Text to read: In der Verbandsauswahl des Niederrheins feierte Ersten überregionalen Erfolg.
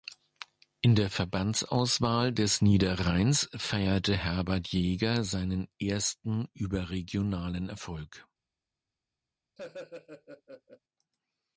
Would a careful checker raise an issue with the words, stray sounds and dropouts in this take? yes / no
yes